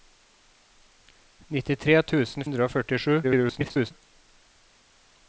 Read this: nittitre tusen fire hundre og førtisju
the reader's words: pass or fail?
fail